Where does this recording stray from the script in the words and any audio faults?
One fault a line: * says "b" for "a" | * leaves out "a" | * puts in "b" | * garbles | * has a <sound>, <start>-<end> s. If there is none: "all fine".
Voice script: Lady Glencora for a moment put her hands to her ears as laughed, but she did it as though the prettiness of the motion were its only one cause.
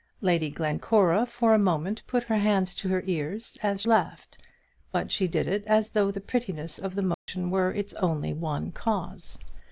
* has a dropout, 7.1-7.3 s